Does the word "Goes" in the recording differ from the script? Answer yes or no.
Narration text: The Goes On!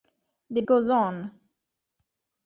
no